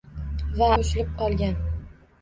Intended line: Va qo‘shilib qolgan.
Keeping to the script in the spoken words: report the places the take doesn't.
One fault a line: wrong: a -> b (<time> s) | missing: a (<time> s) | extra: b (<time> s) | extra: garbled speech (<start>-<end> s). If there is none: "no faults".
no faults